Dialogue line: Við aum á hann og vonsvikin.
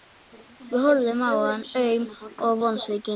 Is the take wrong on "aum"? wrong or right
wrong